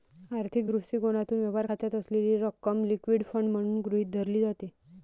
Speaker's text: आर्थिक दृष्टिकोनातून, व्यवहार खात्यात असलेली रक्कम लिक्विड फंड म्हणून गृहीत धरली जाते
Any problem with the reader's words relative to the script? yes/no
no